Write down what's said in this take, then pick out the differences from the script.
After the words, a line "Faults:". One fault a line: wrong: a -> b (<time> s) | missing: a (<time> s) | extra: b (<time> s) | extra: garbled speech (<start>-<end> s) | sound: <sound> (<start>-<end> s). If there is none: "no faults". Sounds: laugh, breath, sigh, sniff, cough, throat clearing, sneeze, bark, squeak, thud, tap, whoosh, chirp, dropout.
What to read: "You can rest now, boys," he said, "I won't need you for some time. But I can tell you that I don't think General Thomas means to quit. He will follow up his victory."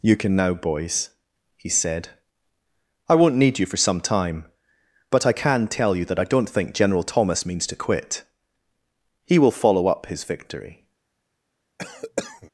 "You can now, boys," he said, "I won't need you for some time. But I can tell you that I don't think General Thomas means to quit. He will follow up his victory."
Faults:
missing: rest (0.3 s)
sound: cough (11.8-12.5 s)